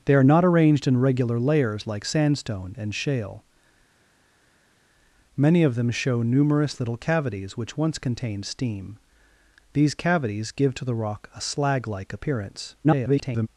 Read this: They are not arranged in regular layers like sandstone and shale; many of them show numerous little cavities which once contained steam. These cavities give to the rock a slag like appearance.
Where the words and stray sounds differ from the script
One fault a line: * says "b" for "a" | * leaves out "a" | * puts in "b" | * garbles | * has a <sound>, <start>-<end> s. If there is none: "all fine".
* garbles